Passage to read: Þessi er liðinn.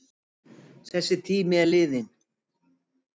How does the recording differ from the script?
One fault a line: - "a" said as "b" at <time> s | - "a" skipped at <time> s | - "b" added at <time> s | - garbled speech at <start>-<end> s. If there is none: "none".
- "tími" added at 1.3 s